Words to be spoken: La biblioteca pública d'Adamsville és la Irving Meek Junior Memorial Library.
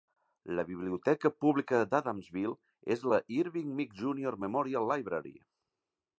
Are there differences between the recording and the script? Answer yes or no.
no